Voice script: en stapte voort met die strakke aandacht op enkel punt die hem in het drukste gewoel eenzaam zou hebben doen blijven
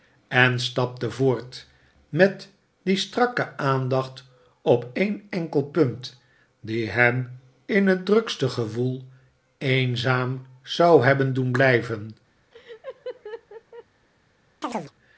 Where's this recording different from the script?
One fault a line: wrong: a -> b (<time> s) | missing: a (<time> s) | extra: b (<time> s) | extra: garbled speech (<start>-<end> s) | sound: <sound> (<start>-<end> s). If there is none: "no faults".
extra: een (4.9 s)
sound: laugh (12.5-13.9 s)
sound: chirp (14.6-14.9 s)